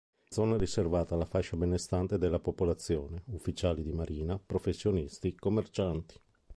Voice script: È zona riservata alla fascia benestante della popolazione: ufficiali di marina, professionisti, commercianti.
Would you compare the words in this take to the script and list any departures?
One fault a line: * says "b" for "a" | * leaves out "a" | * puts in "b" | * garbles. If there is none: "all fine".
all fine